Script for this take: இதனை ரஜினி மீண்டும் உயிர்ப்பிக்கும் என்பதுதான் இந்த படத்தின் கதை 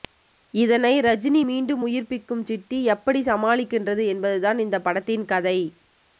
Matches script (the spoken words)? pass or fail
fail